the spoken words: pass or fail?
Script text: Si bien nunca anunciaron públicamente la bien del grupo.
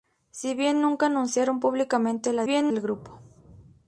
pass